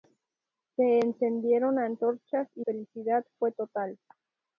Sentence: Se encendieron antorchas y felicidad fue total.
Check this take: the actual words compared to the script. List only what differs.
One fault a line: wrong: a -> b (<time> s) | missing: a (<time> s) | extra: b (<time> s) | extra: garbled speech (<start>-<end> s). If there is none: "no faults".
no faults